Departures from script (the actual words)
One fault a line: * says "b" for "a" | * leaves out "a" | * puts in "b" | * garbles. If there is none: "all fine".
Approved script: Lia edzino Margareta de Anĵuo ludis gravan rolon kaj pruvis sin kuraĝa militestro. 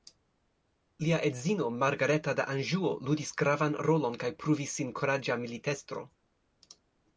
all fine